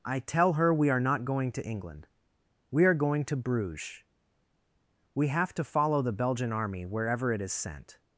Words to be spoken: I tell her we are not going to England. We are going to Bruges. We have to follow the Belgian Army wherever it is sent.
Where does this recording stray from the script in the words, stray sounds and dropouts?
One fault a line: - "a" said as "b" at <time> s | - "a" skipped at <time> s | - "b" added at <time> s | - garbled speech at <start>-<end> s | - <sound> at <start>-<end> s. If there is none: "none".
none